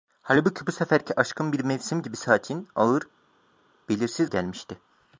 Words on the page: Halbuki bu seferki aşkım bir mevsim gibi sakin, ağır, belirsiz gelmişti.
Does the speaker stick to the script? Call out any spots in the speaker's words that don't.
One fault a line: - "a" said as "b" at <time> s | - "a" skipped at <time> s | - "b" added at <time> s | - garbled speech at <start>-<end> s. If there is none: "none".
none